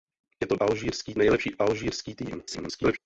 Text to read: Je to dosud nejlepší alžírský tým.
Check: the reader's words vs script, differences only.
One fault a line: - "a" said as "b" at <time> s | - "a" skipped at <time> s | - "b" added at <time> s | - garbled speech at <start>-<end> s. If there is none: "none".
- "dosud" said as "alžírský" at 0.6 s
- garbled speech at 2.5-3.0 s